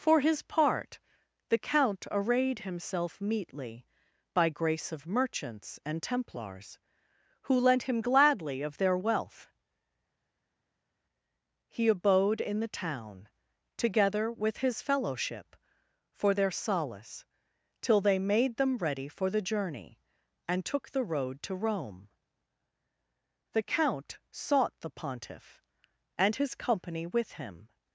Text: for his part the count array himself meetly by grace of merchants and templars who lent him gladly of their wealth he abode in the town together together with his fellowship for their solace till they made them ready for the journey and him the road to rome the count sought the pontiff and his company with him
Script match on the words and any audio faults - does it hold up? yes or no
no